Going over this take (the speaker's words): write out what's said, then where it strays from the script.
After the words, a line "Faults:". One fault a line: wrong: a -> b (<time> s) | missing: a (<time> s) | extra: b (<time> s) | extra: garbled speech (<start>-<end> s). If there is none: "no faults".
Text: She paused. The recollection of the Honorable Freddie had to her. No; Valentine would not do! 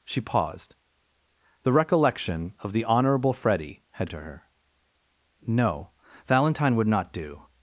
She paused. The recollection of the Honorable Freddie had to her. No; Valentine would not do!
Faults:
no faults